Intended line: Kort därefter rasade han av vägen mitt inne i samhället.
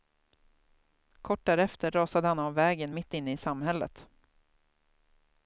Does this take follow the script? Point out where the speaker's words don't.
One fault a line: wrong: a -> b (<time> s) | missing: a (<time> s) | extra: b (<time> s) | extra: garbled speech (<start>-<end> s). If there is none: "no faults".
no faults